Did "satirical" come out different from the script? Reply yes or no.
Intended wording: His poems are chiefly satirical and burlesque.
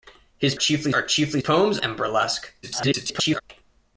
yes